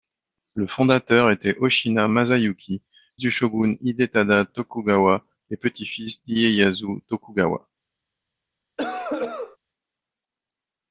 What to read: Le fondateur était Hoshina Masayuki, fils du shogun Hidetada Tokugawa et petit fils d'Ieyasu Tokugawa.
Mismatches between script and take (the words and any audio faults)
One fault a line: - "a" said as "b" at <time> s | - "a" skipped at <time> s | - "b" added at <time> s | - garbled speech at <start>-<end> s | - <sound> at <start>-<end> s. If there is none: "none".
- "fils" skipped at 2.8 s
- cough at 8.8-9.6 s